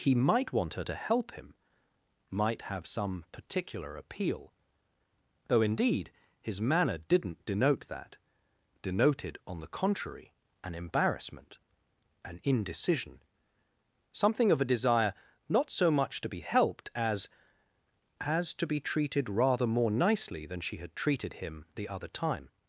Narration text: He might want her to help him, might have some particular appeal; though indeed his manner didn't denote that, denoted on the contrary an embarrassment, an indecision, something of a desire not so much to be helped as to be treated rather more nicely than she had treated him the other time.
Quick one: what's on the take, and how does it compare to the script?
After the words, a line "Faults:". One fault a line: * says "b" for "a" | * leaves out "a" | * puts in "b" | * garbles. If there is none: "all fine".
He might want her to help him, might have some particular appeal; though indeed his manner didn't denote that, denoted on the contrary an embarrassment, an indecision, something of a desire not so much to be helped as as to be treated rather more nicely than she had treated him the other time.
Faults:
* puts in "as"